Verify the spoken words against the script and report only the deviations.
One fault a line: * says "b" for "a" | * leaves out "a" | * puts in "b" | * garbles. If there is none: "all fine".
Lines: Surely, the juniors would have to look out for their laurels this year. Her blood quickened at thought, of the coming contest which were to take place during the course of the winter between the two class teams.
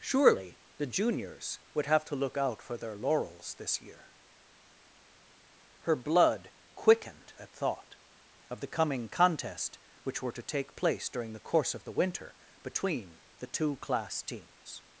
all fine